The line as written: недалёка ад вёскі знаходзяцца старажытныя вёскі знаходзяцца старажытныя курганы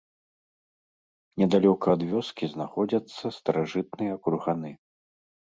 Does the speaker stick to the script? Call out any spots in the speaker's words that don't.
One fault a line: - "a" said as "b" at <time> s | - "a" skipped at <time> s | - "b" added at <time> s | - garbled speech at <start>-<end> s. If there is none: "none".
- "вёскі знаходзяцца старажытныя" skipped at 4.1 s